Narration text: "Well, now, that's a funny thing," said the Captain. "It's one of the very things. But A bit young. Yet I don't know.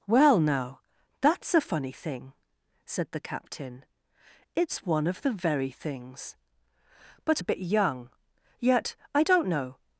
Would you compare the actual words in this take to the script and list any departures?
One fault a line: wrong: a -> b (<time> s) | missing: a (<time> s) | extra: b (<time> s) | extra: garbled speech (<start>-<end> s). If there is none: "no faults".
no faults